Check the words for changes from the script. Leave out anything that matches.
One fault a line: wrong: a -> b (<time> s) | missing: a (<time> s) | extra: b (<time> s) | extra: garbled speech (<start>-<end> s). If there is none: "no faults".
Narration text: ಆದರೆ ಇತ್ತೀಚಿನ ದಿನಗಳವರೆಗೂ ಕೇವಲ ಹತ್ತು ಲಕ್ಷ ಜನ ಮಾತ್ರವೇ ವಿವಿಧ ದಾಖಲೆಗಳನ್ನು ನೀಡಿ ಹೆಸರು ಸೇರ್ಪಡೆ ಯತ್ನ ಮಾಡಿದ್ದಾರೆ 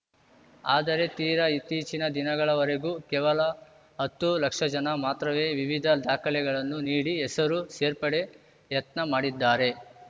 extra: ತೀರಾ (1.2 s)